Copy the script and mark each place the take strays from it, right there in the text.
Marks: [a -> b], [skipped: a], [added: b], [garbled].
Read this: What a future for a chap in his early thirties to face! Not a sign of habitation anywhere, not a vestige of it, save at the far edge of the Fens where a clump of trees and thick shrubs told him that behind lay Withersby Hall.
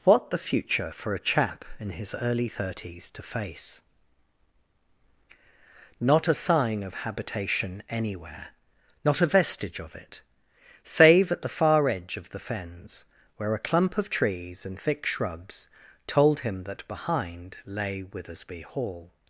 What [a -> the] future for a chap in his early thirties to face! Not a sign of habitation anywhere, not a vestige of it, save at the far edge of the Fens where a clump of trees and thick shrubs told him that behind lay Withersby Hall.